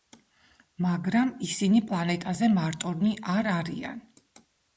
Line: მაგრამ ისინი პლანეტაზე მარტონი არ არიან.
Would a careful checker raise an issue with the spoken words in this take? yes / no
no